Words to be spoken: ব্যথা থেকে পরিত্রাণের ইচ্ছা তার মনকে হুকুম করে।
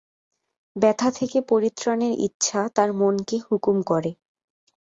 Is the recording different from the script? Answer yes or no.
no